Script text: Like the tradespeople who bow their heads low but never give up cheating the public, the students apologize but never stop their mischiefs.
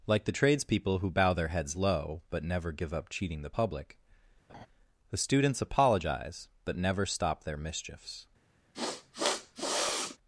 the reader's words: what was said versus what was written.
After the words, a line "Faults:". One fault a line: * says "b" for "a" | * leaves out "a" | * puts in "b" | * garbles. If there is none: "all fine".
Like the tradespeople who bow their heads low but never give up cheating the public, the students apologize but never stop their mischiefs.
Faults:
all fine